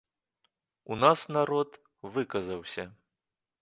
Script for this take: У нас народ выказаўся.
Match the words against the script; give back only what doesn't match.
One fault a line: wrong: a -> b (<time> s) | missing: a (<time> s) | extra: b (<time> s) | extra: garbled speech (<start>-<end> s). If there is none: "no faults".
no faults